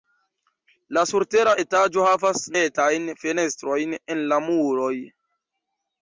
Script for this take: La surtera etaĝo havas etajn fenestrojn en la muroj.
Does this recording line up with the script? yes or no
yes